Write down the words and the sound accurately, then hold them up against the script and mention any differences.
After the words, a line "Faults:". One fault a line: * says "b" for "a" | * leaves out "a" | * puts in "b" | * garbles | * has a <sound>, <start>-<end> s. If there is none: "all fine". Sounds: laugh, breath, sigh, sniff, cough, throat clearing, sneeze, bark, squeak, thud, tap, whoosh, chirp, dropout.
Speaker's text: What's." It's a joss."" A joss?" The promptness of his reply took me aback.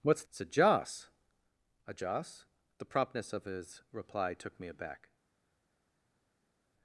What's." It's a joss."" A joss?" The promptness of his reply took me aback.
Faults:
all fine